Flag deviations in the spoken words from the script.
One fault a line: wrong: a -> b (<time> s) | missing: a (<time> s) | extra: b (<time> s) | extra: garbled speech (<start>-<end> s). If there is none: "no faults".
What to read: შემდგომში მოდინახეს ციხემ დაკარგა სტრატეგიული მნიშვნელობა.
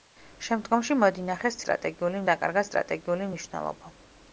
wrong: ციხემ -> სტრატეგიული (1.6 s)